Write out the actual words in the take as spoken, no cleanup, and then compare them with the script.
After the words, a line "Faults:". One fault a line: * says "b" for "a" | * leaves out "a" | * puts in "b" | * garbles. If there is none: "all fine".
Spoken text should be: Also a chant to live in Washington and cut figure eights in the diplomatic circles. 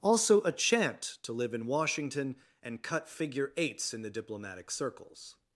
Also a chant to live in Washington and cut figure eights in the diplomatic circles.
Faults:
all fine